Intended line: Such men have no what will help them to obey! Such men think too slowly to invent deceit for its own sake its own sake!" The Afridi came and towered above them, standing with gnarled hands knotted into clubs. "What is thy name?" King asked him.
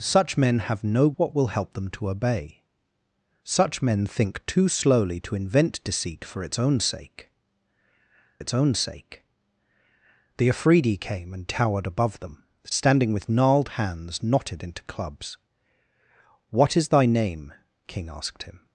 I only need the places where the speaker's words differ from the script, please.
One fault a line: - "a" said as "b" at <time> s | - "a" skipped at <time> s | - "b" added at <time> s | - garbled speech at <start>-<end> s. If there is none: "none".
none